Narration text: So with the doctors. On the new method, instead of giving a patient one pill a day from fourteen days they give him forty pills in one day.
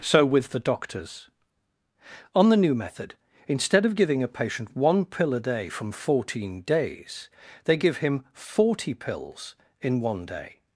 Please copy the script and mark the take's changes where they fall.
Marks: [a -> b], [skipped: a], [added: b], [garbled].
So with the doctors. On the new method, instead of giving a patient one pill a day from fourteen days they give him forty pills in one day.